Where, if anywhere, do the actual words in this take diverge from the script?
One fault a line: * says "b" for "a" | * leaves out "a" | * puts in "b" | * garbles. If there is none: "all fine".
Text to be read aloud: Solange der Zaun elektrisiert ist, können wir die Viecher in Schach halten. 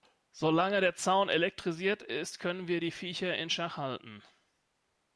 all fine